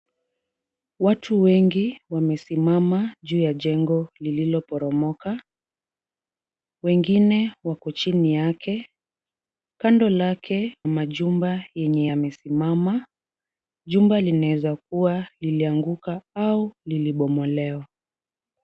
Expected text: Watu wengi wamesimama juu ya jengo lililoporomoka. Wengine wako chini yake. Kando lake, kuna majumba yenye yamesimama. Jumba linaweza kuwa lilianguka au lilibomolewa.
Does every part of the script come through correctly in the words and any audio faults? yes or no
no